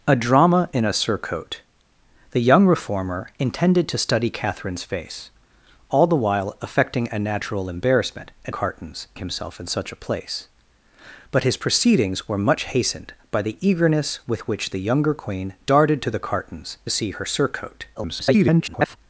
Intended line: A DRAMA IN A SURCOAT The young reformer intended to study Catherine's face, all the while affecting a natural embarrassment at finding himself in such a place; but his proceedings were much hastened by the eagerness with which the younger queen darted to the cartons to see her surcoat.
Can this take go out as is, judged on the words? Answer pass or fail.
fail